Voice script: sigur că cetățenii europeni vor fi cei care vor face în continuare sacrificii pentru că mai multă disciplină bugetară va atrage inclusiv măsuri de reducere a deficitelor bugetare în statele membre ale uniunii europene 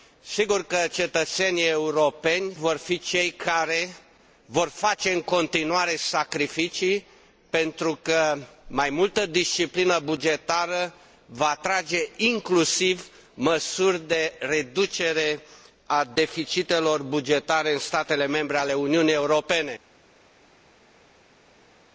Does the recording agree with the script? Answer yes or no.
yes